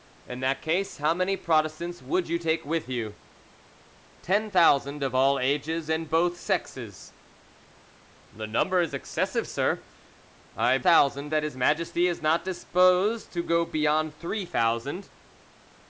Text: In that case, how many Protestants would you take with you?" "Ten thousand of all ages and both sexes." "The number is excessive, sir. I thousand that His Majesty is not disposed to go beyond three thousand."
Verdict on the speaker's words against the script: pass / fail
pass